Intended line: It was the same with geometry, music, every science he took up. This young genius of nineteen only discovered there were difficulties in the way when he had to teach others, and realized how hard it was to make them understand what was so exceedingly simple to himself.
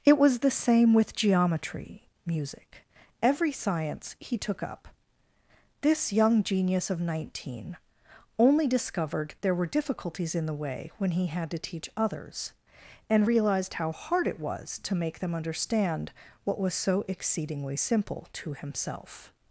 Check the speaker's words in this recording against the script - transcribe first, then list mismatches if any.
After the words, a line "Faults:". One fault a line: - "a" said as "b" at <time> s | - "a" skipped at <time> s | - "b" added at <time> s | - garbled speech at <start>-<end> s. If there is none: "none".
It was the same with geometry, music, every science he took up. This young genius of nineteen only discovered there were difficulties in the way when he had to teach others, and realized how hard it was to make them understand what was so exceedingly simple to himself.
Faults:
none